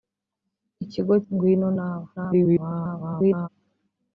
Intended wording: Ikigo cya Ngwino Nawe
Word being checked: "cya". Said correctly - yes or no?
no